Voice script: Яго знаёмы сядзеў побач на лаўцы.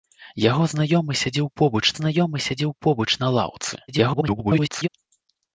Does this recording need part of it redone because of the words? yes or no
yes